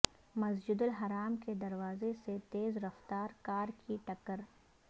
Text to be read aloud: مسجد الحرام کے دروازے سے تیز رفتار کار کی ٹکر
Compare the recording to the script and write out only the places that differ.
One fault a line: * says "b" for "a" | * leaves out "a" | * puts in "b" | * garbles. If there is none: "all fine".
all fine